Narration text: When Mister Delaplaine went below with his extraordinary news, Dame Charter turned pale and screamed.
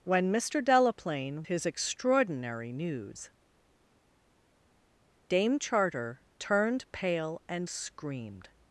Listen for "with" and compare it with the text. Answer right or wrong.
wrong